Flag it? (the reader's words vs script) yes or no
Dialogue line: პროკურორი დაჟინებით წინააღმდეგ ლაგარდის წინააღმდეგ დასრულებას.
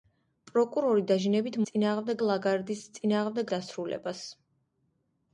no